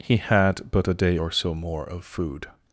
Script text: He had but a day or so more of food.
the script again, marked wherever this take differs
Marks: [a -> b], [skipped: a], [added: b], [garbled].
He had but a day or so more of food.